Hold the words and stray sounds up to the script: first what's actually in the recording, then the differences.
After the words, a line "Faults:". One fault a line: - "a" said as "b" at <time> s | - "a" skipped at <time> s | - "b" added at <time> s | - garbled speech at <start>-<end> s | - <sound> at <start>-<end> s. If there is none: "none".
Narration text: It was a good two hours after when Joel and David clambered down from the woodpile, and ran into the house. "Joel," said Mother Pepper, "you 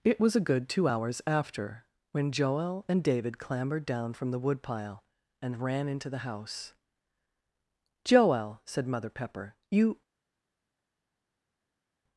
It was a good two hours after when Joel and David clambered down from the woodpile, and ran into the house. "Joel," said Mother Pepper, "you
Faults:
none